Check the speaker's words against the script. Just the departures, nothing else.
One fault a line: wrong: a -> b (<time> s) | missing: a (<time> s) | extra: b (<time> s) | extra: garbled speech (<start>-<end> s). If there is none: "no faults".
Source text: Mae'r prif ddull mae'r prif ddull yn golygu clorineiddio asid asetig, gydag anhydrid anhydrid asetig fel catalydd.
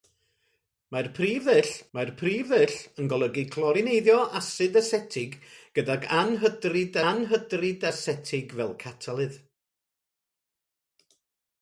no faults